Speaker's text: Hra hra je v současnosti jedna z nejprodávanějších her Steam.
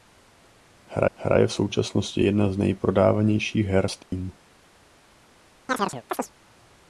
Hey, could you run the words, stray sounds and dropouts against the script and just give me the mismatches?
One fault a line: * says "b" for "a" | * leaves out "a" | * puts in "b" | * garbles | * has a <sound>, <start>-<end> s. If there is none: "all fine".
* has a dropout, 4.0-4.1 s
* has a chirp, 5.7-6.3 s